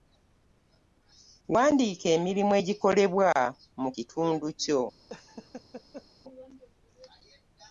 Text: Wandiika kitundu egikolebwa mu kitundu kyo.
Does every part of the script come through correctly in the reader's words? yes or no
no